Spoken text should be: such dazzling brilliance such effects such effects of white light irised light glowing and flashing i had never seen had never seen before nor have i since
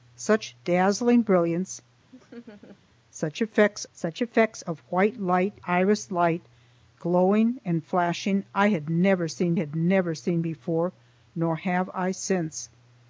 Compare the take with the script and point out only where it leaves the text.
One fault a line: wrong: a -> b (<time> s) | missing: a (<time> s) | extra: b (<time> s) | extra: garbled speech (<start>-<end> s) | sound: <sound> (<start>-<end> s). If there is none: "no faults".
sound: laugh (2.1-2.8 s)